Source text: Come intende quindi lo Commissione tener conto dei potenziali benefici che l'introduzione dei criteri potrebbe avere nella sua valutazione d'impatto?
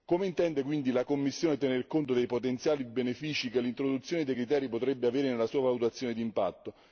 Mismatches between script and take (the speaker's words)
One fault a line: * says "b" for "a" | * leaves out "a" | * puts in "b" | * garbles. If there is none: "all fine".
* says "la" for "lo"